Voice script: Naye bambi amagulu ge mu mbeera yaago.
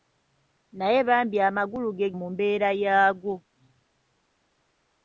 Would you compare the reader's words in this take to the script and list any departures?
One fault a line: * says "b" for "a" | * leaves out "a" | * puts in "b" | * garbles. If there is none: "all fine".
all fine